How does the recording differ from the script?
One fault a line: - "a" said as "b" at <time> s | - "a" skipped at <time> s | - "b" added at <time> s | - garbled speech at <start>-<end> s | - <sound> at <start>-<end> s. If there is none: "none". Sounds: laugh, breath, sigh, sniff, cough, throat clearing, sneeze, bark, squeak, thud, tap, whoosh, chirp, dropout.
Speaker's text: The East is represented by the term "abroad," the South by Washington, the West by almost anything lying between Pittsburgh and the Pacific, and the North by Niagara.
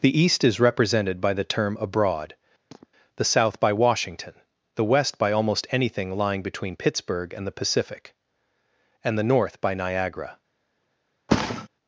- sniff at 2.7-2.9 s
- thud at 11.3-11.7 s